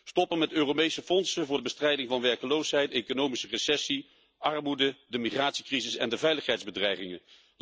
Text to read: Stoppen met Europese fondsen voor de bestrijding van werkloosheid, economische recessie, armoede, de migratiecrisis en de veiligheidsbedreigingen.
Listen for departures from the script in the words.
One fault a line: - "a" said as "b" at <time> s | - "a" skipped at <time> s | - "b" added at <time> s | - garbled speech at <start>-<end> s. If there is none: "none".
none